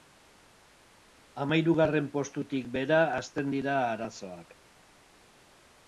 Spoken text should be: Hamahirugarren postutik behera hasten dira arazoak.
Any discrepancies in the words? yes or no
no